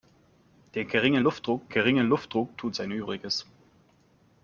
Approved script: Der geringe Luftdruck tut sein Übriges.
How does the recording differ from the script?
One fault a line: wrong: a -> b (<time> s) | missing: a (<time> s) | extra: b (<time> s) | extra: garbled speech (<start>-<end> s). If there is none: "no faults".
extra: geringe Luftdruck (1.7 s)